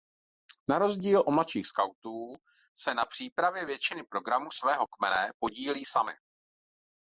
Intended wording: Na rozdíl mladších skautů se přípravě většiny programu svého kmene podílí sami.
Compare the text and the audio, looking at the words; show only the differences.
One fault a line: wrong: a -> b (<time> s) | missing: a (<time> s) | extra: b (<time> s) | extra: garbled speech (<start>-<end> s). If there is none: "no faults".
extra: od (1.2 s)
extra: na (2.9 s)